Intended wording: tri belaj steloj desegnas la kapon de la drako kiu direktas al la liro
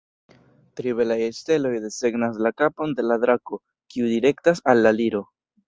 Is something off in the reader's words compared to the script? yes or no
no